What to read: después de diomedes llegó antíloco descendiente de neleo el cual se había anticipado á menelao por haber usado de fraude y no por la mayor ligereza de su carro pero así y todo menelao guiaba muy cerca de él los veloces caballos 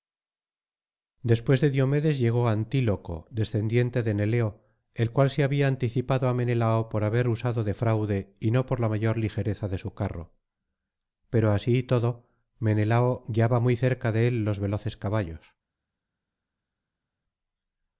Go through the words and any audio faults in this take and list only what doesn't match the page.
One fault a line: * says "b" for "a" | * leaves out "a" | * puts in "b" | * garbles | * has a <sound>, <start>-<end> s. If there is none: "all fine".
all fine